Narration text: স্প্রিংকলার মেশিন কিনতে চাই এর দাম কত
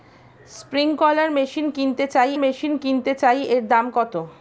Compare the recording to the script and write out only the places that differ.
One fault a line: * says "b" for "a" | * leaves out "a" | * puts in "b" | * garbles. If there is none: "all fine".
* puts in "মেশিন কিনতে চাই"